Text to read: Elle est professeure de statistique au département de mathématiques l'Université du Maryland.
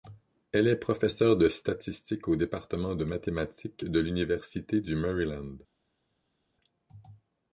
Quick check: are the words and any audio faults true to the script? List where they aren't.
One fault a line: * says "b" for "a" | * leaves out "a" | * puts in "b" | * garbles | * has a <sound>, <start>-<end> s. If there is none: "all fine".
* puts in "de"